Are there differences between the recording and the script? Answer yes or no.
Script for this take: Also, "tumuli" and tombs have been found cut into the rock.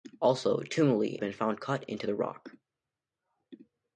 yes